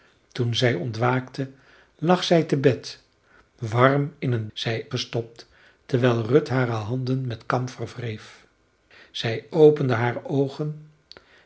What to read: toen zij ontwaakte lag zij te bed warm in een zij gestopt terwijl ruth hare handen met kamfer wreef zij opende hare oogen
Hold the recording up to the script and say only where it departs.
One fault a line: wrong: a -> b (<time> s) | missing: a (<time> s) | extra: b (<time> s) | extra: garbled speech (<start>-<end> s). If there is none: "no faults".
no faults